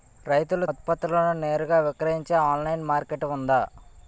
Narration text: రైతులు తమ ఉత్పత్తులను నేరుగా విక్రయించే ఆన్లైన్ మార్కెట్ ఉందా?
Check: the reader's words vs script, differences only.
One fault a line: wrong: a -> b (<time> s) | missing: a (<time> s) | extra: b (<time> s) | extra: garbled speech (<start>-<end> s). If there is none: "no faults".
missing: తమ (0.7 s)